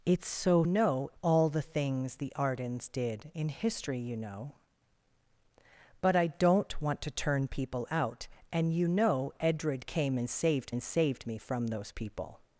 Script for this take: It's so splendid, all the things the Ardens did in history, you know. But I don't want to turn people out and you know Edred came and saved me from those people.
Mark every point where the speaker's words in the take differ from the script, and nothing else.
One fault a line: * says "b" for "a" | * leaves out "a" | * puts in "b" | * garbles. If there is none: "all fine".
* says "know" for "splendid"
* puts in "and saved"